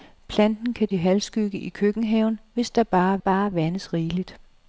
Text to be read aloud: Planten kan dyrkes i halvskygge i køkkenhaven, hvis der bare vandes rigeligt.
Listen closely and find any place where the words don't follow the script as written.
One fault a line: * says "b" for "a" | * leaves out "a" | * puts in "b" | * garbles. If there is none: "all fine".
* leaves out "dyrkes"
* puts in "bare"